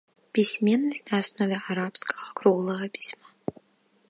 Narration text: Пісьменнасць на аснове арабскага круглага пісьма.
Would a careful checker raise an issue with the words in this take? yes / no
no